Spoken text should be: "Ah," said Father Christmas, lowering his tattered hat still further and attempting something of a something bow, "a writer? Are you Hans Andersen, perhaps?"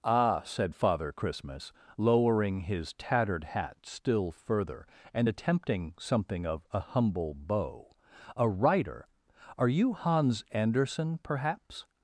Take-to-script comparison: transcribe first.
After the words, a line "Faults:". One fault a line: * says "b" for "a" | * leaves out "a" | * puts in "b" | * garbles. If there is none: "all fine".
"Ah," said Father Christmas, lowering his tattered hat still further and attempting something of a humble bow, "a writer? Are you Hans Andersen, perhaps?"
Faults:
* says "humble" for "something"